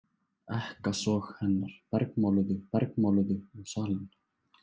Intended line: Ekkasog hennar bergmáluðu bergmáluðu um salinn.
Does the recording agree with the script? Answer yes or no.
yes